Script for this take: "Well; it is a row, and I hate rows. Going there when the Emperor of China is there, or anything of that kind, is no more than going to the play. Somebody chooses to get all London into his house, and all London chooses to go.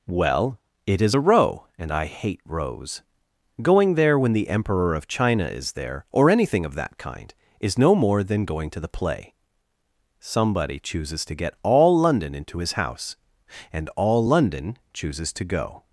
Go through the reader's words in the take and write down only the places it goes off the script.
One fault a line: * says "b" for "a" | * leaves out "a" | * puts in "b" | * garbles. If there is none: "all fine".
all fine